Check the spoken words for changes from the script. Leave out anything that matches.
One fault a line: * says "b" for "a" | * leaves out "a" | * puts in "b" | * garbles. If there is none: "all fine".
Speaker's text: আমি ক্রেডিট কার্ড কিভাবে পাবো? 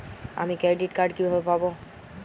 all fine